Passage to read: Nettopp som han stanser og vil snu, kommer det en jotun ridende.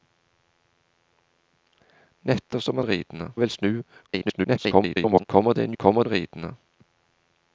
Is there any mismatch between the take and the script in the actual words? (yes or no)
yes